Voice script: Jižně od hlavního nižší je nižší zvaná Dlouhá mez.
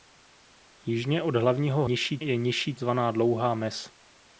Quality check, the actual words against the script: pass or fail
pass